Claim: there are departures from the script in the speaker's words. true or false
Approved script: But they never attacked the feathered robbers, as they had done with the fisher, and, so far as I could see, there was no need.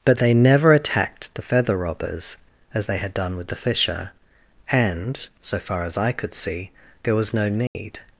true